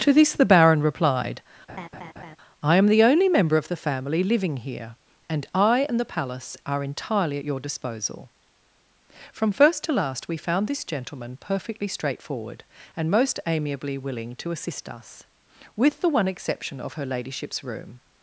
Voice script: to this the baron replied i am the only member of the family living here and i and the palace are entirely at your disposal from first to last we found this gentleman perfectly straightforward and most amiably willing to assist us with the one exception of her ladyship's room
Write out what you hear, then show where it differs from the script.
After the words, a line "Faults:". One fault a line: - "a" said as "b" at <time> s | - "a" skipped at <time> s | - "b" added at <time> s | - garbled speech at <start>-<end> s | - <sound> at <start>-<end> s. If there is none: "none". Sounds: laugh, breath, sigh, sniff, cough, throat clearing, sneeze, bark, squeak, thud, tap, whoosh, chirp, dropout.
to this the baron replied i am the only member of the family living here and i and the palace are entirely at your disposal from first to last we found this gentleman perfectly straightforward and most amiably willing to assist us with the one exception of her ladyship's room
Faults:
- laugh at 1.7-2.4 s